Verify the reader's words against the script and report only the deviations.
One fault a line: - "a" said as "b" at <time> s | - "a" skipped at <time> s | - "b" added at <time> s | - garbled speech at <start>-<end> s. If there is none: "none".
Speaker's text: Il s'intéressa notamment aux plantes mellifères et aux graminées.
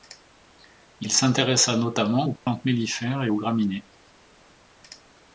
none